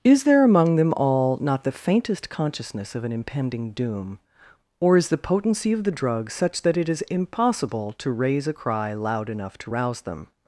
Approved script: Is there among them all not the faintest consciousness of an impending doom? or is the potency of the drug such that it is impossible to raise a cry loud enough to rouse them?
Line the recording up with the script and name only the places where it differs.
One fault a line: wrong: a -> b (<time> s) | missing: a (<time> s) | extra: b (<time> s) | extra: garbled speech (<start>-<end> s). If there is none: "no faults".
no faults